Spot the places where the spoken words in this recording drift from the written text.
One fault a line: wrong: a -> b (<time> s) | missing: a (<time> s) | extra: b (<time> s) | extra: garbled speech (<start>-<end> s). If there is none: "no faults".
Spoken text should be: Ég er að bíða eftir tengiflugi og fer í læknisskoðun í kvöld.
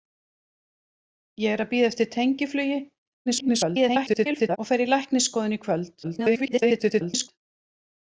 extra: garbled speech (3.3-4.6 s)
extra: garbled speech (6.0-7.3 s)